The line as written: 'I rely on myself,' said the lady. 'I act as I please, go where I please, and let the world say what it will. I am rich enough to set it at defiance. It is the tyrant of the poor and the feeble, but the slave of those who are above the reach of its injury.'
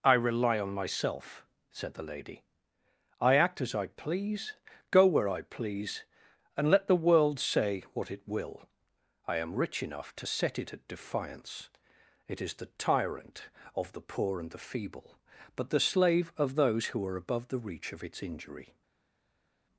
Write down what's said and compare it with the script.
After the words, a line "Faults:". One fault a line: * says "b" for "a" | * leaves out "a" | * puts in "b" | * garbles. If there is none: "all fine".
'I rely on myself,' said the lady. 'I act as I please, go where I please, and let the world say what it will. I am rich enough to set it at defiance. It is the tyrant of the poor and the feeble, but the slave of those who are above the reach of its injury.'
Faults:
all fine